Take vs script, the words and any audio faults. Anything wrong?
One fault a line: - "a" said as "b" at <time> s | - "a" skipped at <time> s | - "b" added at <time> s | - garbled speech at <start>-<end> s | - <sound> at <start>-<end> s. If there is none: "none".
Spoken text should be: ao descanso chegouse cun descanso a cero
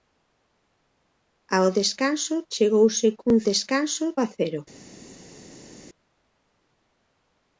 none